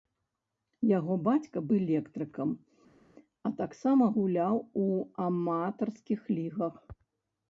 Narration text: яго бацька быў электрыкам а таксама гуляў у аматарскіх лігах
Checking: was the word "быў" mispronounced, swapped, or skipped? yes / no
yes